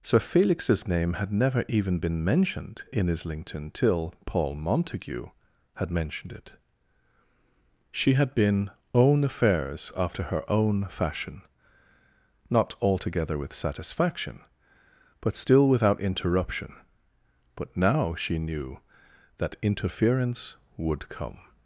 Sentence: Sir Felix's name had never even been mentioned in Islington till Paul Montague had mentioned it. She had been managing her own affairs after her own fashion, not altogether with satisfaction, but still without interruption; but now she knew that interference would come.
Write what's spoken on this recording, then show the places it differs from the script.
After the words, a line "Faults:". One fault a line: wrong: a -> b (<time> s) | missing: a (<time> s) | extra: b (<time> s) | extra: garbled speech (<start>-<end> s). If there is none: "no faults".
Sir Felix's name had never even been mentioned in Islington till Paul Montague had mentioned it. She had been own affairs after her own fashion, not altogether with satisfaction, but still without interruption; but now she knew that interference would come.
Faults:
missing: managing her (8.7 s)